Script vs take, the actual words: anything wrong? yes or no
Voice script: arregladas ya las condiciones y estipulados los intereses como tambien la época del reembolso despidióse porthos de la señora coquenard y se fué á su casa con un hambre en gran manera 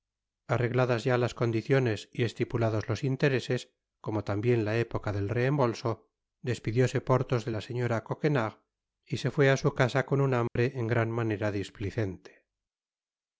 no